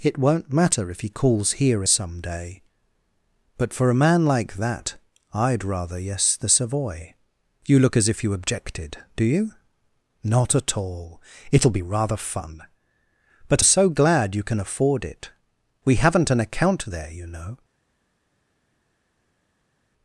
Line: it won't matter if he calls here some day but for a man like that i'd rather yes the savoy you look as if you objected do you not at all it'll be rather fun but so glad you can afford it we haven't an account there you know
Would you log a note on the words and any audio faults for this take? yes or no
no